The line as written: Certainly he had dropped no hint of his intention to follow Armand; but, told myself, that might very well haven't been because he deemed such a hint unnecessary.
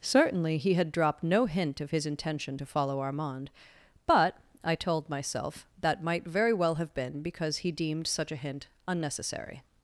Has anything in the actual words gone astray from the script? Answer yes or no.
yes